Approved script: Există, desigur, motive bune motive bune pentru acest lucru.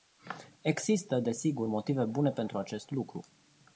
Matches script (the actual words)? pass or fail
fail